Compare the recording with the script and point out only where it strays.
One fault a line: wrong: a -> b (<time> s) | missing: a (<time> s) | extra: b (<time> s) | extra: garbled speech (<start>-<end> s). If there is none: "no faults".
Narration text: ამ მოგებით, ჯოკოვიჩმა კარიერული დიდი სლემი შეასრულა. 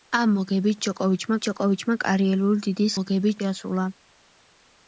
extra: ჯოკოვიჩმა (1.5 s)
wrong: სლემი -> მოგებით (3.0 s)